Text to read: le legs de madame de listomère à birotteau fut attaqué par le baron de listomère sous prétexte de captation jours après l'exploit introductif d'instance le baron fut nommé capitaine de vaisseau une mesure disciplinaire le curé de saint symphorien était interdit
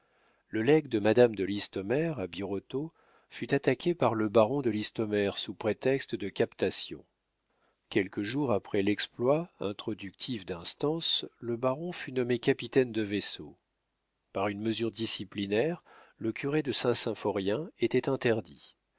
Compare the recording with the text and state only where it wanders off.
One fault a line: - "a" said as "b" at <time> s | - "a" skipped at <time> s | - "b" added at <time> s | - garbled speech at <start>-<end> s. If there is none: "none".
- "quelques" added at 7.9 s
- "par" added at 14.3 s